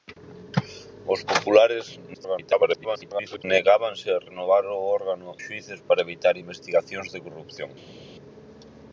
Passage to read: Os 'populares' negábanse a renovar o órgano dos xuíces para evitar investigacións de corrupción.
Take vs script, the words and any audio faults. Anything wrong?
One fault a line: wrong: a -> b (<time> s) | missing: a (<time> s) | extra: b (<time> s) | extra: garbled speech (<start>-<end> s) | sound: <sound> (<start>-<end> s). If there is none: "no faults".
extra: garbled speech (2.1-3.4 s)
missing: dos (5.3 s)